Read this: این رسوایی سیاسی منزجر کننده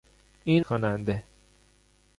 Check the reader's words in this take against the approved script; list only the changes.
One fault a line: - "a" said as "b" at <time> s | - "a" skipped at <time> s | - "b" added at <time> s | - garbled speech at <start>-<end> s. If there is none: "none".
- "رسوایی سیاسی منزجر" skipped at 0.7 s